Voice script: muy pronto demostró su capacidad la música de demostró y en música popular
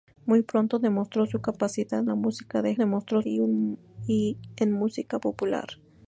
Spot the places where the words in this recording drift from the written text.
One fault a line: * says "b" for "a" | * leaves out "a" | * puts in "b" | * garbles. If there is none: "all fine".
all fine